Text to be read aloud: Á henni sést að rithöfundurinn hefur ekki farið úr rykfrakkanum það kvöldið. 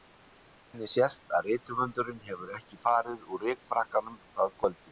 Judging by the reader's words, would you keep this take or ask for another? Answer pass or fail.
pass